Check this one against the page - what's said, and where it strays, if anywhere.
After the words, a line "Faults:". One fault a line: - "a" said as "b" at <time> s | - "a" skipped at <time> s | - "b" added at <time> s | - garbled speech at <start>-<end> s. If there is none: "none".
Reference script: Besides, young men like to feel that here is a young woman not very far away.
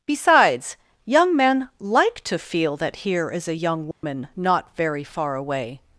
Besides, young men like to feel that here is a young woman not very far away.
Faults:
none